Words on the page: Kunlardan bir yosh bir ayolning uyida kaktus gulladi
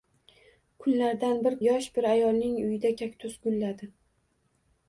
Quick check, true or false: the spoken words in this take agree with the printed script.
true